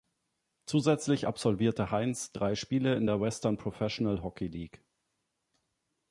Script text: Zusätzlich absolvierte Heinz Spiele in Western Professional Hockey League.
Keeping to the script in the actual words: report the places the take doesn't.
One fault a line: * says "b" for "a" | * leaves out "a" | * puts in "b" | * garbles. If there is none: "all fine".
* puts in "drei"
* puts in "der"